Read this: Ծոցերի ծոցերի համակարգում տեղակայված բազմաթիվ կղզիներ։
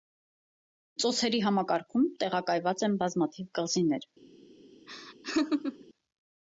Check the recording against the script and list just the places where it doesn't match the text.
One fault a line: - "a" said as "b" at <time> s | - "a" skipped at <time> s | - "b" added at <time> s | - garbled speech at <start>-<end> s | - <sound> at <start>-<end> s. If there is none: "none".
- "ծոցերի" skipped at 1.4 s
- "են" added at 2.9 s
- laugh at 4.9-5.8 s